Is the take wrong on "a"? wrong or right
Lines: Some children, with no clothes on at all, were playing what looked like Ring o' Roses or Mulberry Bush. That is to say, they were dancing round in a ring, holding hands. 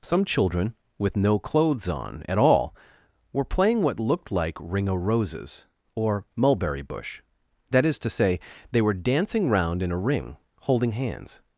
right